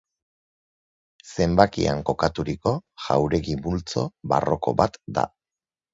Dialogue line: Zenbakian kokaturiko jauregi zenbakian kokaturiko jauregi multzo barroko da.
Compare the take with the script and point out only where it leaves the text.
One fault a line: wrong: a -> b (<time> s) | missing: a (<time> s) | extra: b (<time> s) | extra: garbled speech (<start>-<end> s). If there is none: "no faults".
missing: zenbakian kokaturiko jauregi (3.6 s)
extra: bat (4.8 s)